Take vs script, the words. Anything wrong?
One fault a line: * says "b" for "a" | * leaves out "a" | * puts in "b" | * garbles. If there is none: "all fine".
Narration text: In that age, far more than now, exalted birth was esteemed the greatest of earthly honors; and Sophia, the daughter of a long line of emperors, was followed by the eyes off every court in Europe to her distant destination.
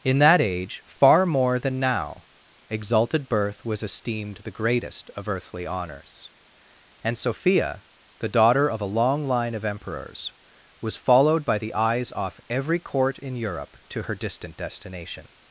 all fine